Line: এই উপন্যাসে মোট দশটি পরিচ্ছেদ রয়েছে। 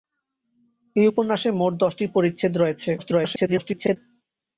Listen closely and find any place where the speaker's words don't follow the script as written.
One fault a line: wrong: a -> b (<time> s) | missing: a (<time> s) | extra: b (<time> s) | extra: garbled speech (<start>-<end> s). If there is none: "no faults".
extra: garbled speech (3.0-4.0 s)